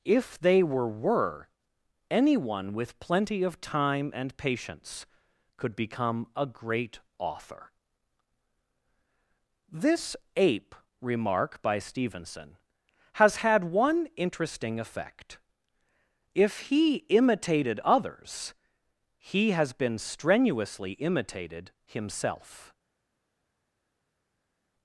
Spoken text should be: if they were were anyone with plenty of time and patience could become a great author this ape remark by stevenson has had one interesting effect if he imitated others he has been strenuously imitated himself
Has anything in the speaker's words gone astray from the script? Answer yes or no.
no